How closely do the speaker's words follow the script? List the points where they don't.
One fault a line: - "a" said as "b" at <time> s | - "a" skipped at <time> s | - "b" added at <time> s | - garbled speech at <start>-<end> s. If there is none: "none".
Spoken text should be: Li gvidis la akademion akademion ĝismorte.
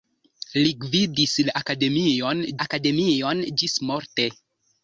none